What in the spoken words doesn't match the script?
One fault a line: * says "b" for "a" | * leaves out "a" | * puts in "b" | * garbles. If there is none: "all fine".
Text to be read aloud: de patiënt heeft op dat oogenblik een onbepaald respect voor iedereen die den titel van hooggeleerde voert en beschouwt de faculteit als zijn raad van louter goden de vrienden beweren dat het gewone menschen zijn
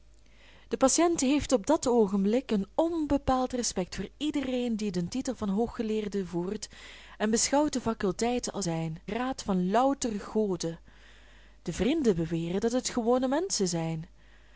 all fine